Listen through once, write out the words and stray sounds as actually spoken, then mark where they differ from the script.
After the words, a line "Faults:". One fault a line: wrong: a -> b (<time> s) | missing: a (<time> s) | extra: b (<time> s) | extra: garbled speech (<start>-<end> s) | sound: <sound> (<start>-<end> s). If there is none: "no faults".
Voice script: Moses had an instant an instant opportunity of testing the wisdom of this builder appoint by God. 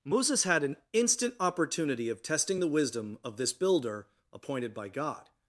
Moses had an instant opportunity of testing the wisdom of this builder appointed by God.
Faults:
missing: an instant (1.4 s)
wrong: appoint -> appointed (4.3 s)